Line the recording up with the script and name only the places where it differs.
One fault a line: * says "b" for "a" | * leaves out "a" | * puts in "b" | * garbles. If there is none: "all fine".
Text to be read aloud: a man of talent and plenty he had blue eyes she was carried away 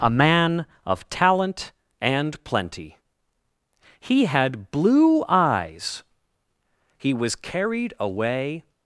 * says "he" for "she"